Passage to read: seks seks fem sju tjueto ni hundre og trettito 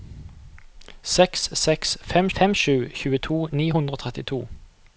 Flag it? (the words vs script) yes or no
yes